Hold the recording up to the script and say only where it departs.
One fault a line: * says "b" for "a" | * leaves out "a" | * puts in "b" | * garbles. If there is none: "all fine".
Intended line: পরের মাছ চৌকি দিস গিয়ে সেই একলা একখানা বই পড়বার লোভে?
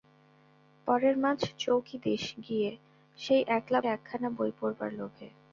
all fine